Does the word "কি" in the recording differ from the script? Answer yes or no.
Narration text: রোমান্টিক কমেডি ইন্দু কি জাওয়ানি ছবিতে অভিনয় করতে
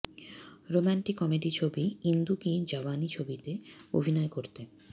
no